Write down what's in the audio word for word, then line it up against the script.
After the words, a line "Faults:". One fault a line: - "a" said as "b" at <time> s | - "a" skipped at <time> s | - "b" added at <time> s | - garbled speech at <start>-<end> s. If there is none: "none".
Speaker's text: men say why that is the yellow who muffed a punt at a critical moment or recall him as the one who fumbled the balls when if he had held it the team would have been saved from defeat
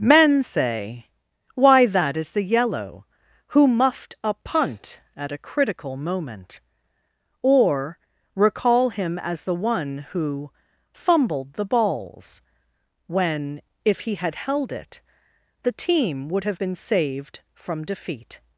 men say why that is the yellow who muffed a punt at a critical moment or recall him as the one who fumbled the balls when if he had held it the team would have been saved from defeat
Faults:
none